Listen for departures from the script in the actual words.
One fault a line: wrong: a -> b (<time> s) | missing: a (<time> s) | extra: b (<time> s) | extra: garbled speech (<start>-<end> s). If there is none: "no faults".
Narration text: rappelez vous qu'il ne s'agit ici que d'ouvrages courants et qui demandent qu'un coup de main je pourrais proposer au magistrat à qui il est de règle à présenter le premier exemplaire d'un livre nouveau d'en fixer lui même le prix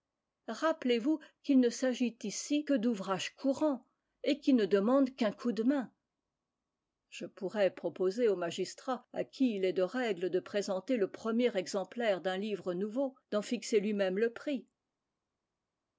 extra: ne (4.5 s)
wrong: à -> de (10.3 s)